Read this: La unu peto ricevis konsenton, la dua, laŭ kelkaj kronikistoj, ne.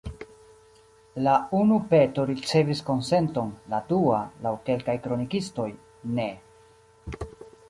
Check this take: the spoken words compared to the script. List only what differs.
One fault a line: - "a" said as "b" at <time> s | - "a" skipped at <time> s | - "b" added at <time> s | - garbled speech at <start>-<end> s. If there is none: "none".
none